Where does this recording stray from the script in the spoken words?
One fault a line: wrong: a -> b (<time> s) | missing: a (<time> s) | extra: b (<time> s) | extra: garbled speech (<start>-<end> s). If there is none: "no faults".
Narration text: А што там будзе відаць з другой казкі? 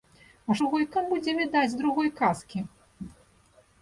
wrong: што -> другой (0.6 s)